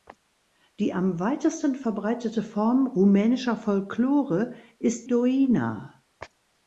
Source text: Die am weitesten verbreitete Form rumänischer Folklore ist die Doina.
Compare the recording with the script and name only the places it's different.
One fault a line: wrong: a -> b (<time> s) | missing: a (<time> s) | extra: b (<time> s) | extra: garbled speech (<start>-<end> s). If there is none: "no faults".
missing: die (5.1 s)